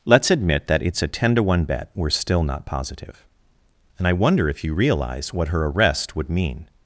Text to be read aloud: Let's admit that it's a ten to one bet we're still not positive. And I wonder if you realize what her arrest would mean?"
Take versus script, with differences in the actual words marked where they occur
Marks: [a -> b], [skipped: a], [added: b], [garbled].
Let's admit that it's a ten to one bet we're still not positive. And I wonder if you realize what her arrest would mean?"